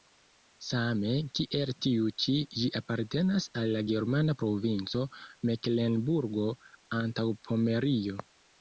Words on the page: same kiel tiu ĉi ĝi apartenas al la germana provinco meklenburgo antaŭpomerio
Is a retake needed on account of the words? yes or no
no